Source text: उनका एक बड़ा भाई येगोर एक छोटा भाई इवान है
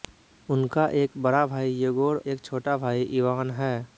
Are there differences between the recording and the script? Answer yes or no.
no